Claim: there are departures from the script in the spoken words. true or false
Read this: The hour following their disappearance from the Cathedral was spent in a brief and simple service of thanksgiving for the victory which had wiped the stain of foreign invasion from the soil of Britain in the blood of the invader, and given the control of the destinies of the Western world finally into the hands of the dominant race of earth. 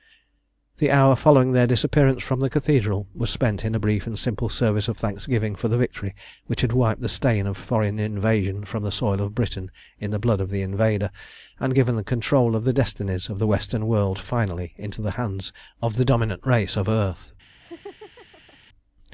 false